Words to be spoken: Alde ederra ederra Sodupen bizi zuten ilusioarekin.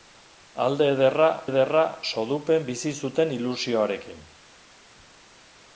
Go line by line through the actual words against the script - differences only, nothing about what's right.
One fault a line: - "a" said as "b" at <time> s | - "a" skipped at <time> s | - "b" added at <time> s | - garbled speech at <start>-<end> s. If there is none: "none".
none